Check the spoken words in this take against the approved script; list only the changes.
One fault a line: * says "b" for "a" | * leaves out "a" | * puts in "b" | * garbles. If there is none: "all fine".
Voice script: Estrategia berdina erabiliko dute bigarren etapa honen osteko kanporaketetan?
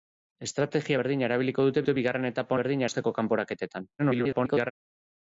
* puts in "dute"
* says "berdina" for "honen"
* garbles